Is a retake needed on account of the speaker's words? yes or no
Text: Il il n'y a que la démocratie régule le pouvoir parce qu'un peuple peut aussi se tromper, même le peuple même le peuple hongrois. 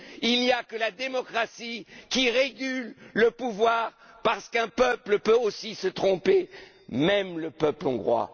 yes